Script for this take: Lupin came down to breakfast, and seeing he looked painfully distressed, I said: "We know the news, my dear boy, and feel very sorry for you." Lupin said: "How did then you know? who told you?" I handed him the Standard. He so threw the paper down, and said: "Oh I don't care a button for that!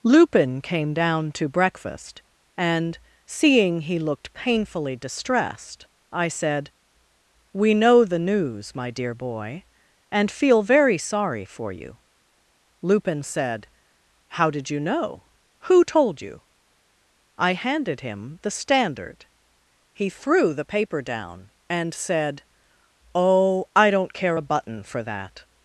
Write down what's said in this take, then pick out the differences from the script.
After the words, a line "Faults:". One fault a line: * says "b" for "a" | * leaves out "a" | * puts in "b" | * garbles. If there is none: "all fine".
Lupin came down to breakfast, and seeing he looked painfully distressed, I said: "We know the news, my dear boy, and feel very sorry for you." Lupin said: "How did you know? who told you?" I handed him the Standard. He threw the paper down, and said: "Oh I don't care a button for that!
Faults:
* leaves out "then"
* leaves out "so"